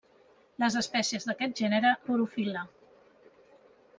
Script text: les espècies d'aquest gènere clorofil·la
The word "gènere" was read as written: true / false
true